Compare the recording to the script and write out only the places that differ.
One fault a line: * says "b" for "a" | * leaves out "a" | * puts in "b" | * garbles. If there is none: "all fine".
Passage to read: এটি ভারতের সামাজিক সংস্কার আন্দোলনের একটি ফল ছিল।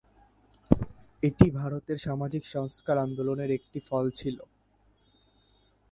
all fine